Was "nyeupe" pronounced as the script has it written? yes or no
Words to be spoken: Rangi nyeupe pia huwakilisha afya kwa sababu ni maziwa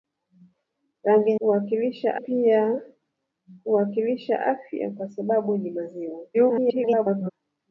no